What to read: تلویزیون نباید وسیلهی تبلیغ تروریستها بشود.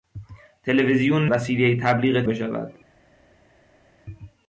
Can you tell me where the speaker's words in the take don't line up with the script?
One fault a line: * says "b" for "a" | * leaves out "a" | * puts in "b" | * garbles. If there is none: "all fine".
* leaves out "نباید"
* leaves out "تروریستها"